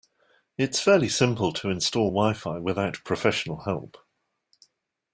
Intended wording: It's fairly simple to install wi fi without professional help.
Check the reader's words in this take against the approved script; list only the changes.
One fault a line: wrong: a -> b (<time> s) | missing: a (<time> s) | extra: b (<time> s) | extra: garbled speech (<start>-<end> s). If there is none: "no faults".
no faults